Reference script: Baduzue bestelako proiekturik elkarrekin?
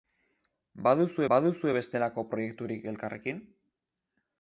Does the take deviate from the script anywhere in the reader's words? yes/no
yes